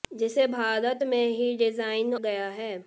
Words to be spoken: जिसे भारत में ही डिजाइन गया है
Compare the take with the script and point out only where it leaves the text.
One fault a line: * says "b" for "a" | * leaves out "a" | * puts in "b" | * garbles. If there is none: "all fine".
all fine